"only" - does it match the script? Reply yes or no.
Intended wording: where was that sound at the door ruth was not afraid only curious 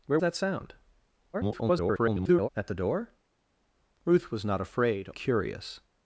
no